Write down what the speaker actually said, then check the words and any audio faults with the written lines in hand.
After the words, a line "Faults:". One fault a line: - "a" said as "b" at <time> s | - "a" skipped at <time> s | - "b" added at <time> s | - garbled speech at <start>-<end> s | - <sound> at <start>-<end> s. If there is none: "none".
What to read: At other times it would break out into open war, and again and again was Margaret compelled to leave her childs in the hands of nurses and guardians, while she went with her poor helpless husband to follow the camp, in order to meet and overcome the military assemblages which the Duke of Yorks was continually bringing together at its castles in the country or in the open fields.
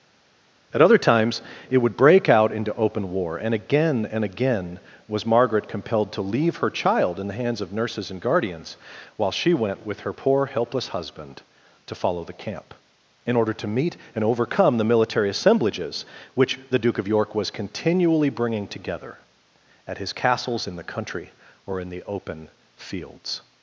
At other times it would break out into open war, and again and again was Margaret compelled to leave her child in the hands of nurses and guardians, while she went with her poor helpless husband to follow the camp, in order to meet and overcome the military assemblages which the Duke of York was continually bringing together at his castles in the country or in the open fields.
Faults:
- "childs" said as "child" at 6.7 s
- "Yorks" said as "York" at 17.1 s
- "its" said as "his" at 20.0 s